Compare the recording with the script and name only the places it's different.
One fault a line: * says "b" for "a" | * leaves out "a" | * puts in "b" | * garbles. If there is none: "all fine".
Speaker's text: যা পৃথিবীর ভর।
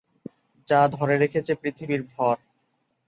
* puts in "ধরে রেখেছে"